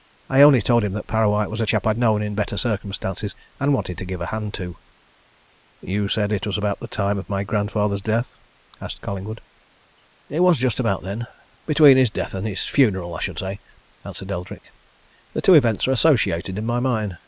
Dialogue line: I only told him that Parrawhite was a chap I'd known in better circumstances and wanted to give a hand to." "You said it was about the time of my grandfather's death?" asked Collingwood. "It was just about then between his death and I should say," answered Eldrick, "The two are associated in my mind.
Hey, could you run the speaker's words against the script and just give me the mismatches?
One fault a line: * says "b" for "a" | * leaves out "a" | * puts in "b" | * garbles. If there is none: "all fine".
* puts in "his funeral"
* puts in "events"